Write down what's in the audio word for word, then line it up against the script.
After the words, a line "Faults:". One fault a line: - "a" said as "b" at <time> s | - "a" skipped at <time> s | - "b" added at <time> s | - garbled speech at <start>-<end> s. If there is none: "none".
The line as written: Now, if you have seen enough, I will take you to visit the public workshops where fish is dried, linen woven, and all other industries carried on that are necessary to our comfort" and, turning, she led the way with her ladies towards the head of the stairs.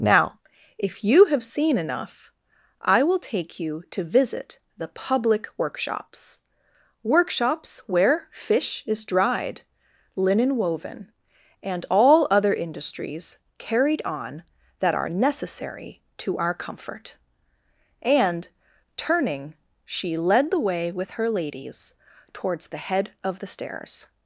Now, if you have seen enough, I will take you to visit the public workshops workshops where fish is dried, linen woven, and all other industries carried on that are necessary to our comfort" and, turning, she led the way with her ladies towards the head of the stairs.
Faults:
- "workshops" added at 7.0 s